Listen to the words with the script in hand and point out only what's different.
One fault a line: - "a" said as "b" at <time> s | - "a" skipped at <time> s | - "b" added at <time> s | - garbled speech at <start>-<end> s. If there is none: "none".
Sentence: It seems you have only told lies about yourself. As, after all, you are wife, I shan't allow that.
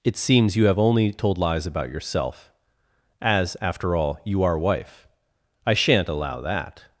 none